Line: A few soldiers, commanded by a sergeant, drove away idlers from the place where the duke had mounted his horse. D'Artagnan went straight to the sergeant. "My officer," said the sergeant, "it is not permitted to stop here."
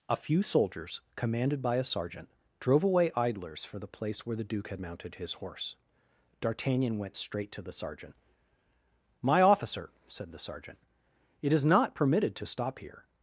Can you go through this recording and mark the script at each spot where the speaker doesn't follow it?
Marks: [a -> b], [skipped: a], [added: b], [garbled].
A few soldiers, commanded by a sergeant, drove away idlers [from -> for] the place where the duke had mounted his horse. D'Artagnan went straight to the sergeant. "My officer," said the sergeant, "it is not permitted to stop here."